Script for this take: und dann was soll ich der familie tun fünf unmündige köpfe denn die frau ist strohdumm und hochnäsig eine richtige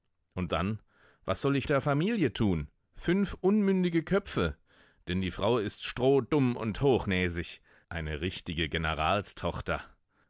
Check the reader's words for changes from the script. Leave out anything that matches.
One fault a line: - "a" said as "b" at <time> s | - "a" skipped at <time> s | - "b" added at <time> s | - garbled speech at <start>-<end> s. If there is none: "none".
none